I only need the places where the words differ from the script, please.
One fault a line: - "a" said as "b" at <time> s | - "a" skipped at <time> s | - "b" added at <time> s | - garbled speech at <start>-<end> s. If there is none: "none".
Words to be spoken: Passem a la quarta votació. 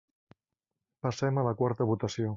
none